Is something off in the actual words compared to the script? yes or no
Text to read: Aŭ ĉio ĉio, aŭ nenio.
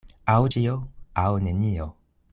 yes